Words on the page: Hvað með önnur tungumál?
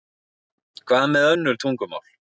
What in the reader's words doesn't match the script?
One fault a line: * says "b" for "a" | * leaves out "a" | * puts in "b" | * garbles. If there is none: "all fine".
all fine